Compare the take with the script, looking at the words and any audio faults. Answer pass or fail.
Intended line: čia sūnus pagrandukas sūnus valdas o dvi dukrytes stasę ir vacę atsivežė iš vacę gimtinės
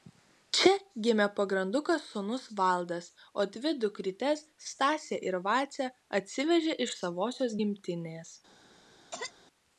fail